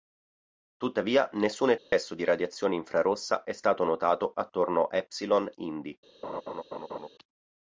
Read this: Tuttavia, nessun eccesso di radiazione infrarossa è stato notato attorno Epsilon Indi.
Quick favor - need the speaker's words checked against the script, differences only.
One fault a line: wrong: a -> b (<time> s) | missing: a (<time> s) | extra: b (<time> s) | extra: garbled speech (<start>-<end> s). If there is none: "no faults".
no faults